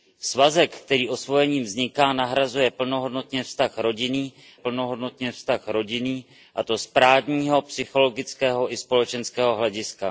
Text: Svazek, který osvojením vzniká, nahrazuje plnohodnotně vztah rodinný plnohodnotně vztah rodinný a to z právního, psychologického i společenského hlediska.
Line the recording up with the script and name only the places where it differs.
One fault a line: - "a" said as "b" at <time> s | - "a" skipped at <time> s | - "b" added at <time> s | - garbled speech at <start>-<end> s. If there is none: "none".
none